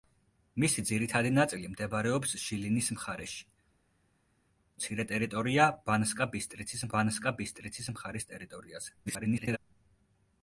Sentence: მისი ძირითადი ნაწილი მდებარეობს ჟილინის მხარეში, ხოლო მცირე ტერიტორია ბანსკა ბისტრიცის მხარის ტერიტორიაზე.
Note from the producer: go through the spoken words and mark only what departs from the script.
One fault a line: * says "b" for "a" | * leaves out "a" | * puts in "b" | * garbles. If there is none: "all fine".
* leaves out "ხოლო"
* puts in "ბანსკა ბისტრიცის"
* garbles